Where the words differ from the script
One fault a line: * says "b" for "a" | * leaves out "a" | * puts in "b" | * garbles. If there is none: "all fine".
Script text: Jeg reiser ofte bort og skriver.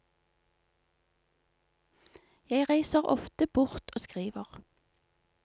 all fine